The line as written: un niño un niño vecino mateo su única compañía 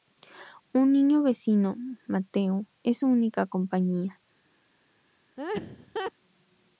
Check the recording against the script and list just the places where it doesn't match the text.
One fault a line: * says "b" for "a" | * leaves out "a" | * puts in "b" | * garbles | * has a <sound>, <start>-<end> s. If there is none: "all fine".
* leaves out "un niño"
* puts in "es"
* has a laugh, 5.4-6.1 s